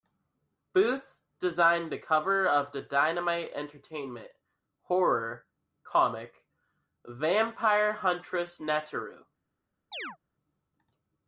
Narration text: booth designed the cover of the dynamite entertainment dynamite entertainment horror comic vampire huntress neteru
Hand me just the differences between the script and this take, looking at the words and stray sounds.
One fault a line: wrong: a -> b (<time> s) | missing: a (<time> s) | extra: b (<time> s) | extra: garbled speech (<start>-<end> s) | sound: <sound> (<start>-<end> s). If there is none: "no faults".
missing: dynamite entertainment (4.3 s)
sound: chirp (9.9-10.2 s)